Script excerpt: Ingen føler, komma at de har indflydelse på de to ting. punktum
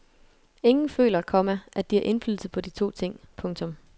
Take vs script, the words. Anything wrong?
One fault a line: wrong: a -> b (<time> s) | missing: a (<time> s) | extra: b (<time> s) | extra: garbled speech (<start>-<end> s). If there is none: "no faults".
no faults